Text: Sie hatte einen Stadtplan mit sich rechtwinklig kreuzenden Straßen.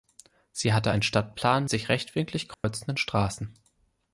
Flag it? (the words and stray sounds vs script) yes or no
yes